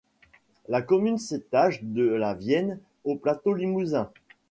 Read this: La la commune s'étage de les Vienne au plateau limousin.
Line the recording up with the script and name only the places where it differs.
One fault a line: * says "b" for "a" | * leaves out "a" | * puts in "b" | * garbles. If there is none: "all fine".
* leaves out "la"
* says "la" for "les"